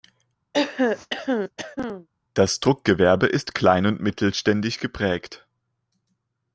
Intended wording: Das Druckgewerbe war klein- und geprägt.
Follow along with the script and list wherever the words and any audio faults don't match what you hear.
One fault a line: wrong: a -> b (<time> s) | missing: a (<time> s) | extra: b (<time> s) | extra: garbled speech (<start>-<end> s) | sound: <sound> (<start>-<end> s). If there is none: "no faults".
sound: throat clearing (0.5-2.1 s)
wrong: war -> ist (3.3 s)
extra: mittelständisch (4.0 s)